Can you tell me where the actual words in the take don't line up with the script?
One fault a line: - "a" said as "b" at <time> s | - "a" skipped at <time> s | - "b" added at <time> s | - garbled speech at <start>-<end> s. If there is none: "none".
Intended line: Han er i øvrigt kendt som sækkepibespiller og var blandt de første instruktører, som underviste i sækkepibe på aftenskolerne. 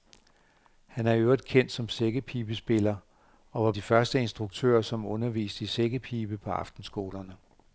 - "blandt" skipped at 3.7 s